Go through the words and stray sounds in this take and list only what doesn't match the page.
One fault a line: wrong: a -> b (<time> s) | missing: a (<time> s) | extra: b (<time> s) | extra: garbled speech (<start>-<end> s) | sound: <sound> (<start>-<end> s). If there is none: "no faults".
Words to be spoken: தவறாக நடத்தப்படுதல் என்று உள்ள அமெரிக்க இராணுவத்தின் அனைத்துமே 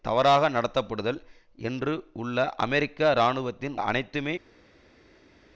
no faults